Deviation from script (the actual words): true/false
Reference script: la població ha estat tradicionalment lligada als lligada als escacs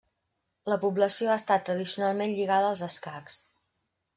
true